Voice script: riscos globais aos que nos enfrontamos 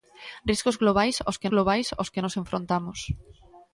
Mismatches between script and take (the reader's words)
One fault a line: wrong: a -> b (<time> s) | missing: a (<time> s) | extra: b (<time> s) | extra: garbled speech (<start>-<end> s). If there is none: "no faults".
extra: globais aos que (1.5 s)